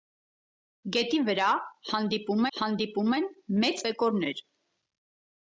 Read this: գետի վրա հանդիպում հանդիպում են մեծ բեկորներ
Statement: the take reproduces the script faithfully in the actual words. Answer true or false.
true